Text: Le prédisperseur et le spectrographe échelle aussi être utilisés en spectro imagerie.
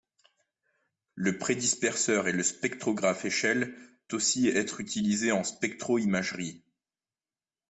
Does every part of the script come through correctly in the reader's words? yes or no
yes